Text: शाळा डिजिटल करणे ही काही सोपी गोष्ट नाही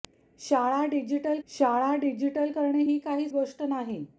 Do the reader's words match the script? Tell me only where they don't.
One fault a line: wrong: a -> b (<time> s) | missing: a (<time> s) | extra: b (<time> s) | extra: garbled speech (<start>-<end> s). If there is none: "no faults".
extra: शाळा डिजिटल (1.5 s)
missing: सोपी (3.3 s)